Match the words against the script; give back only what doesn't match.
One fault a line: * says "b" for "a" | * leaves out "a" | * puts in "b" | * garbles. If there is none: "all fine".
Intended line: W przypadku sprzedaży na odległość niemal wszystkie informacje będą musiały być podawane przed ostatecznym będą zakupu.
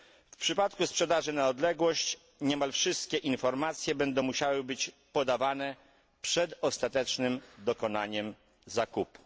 * says "dokonaniem" for "będą"